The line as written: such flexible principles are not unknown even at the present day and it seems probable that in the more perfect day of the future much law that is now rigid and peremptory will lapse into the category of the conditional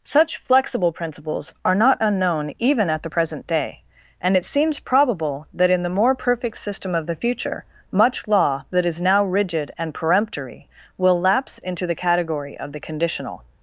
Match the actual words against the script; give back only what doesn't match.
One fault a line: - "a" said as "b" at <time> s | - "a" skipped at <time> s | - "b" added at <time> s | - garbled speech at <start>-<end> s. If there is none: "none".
- "day" said as "system" at 6.5 s